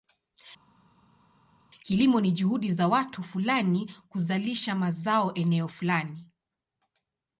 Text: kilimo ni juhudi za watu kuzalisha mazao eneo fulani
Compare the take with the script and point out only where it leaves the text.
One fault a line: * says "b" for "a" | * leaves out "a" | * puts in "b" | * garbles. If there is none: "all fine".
* puts in "fulani"